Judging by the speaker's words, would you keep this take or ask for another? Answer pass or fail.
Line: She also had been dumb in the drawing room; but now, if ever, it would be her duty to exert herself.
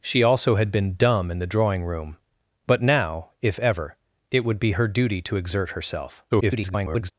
fail